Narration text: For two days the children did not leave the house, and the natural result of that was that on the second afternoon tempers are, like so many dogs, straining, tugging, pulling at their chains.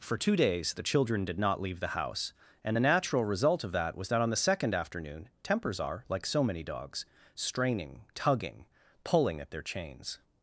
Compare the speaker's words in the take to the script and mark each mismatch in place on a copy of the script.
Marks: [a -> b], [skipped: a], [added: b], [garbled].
For two days the children did not leave the house, and the natural result of that was that on the second afternoon tempers are, like so many dogs, straining, tugging, pulling at their chains.